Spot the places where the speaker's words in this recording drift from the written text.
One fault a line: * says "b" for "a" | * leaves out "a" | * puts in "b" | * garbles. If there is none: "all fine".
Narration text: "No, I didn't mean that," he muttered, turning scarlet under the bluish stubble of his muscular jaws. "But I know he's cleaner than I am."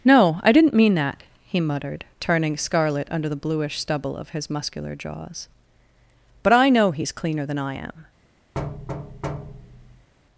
all fine